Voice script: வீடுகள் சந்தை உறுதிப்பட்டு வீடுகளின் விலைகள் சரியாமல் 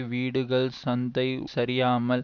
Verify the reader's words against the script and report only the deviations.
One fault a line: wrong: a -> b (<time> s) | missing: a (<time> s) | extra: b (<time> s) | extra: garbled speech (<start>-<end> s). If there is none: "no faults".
missing: உறுதிப்பட்டு வீடுகளின் விலைகள் (1.3 s)